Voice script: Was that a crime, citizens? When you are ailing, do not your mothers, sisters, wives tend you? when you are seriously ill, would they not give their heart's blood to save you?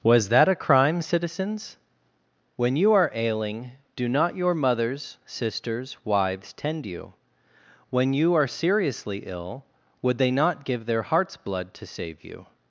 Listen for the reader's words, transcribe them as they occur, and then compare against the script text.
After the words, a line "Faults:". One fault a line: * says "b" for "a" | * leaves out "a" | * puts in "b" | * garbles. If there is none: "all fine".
Was that a crime, citizens? When you are ailing, do not your mothers, sisters, wives tend you? when you are seriously ill, would they not give their heart's blood to save you?
Faults:
all fine